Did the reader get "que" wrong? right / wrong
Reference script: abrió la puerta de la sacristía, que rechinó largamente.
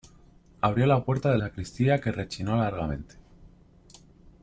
right